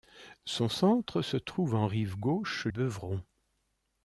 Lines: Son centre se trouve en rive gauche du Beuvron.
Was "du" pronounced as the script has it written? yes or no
no